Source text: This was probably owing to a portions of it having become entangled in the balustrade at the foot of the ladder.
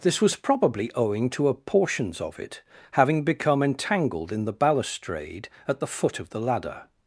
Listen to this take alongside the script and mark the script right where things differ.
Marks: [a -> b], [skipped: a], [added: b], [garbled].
This was probably owing to a portions of it having become entangled in the balustrade at the foot of the ladder.